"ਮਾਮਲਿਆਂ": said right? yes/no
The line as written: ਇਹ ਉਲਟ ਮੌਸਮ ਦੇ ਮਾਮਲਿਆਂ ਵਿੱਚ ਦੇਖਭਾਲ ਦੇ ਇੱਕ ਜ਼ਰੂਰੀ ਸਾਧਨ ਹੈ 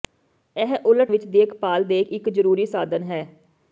no